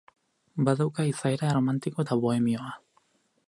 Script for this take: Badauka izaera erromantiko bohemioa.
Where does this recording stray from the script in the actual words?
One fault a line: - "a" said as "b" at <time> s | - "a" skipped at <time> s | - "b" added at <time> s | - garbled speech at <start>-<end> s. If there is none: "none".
- "eta" added at 2.0 s